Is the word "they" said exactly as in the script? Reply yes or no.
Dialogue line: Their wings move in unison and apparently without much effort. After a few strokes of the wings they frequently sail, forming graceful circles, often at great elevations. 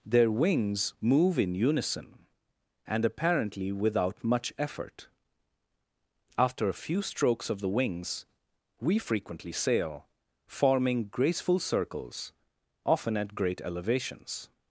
no